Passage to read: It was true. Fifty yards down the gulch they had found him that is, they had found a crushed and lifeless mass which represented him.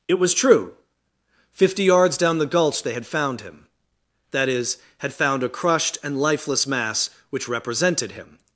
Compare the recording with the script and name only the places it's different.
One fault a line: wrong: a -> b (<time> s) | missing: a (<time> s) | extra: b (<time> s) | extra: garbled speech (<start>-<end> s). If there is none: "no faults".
missing: they (4.8 s)